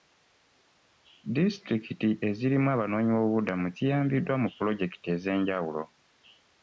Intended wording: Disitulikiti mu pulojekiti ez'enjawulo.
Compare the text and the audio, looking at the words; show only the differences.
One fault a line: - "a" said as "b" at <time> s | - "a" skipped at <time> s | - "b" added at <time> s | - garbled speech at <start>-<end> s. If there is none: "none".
- "ezirimu abanoonyiboobubudamu ziyambiddwa" added at 2.3 s